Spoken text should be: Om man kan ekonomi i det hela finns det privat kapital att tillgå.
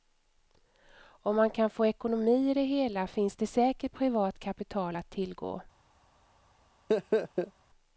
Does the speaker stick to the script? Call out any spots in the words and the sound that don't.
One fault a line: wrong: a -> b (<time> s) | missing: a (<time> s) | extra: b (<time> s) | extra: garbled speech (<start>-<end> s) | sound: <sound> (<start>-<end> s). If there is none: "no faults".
extra: få (1.7 s)
extra: säkert (3.5 s)
sound: laugh (6.9-7.5 s)